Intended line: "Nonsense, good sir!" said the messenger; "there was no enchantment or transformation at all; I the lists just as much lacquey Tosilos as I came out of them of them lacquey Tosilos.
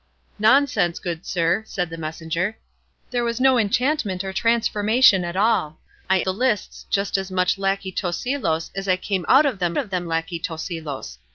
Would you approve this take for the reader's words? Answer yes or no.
yes